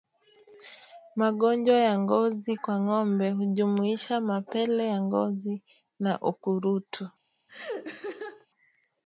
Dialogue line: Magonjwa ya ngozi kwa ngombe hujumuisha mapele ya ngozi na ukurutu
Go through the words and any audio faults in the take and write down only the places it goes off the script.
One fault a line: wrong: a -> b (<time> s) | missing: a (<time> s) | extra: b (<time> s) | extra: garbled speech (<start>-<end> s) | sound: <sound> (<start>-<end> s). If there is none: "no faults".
sound: laugh (7.5-8.5 s)